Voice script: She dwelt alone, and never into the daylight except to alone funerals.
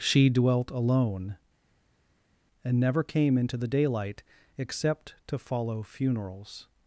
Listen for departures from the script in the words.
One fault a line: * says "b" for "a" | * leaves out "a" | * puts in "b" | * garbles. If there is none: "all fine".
* puts in "came"
* says "follow" for "alone"